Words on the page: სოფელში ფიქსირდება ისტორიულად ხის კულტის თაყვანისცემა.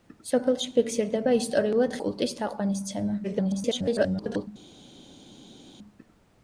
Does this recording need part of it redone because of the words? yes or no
yes